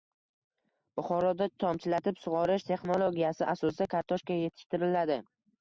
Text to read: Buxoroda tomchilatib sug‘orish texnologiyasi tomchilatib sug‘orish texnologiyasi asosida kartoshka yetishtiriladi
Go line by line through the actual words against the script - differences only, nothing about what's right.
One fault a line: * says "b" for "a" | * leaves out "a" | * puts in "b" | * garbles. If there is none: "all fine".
* leaves out "tomchilatib sug‘orish texnologiyasi"